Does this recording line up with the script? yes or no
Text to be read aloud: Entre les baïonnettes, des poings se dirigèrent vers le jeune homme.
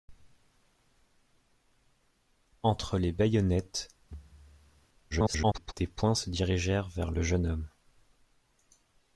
no